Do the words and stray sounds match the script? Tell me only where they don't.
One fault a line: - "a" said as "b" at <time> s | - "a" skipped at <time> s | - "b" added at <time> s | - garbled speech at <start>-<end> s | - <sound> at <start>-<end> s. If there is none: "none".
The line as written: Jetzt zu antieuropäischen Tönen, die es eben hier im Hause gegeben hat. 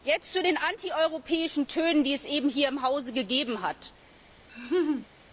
- "den" added at 0.4 s
- laugh at 4.5-5.1 s